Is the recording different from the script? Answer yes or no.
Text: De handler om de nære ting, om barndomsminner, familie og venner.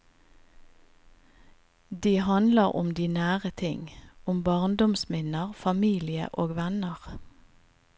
no